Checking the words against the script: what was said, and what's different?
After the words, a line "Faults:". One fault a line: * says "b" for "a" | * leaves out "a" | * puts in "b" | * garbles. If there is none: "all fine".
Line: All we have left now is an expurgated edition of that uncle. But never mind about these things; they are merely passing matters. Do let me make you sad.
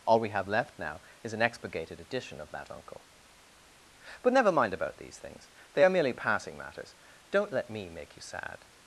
All we have left now is an expurgated edition of that uncle. But never mind about these things; they are merely passing matters. Don't let me make you sad.
Faults:
* says "Don't" for "Do"